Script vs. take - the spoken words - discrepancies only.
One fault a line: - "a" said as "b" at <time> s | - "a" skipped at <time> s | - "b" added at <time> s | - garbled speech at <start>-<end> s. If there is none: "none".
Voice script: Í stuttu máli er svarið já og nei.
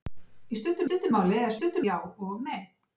- "stuttu" added at 0.9 s
- "svarið" said as "stuttu" at 1.6 s